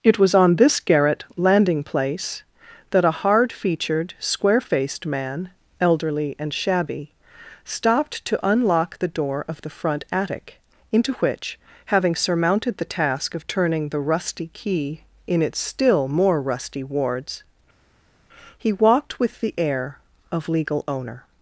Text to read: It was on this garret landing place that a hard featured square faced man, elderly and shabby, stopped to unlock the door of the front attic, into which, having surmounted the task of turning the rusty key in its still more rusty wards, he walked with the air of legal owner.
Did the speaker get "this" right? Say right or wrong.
right